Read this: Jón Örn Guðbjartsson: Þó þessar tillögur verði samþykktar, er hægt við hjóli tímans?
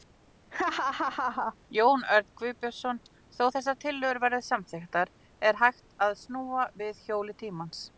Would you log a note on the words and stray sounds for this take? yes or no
yes